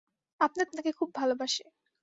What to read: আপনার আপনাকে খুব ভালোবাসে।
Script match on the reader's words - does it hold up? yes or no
yes